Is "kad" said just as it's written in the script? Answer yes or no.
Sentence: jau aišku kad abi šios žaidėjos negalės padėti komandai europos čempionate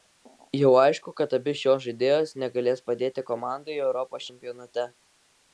yes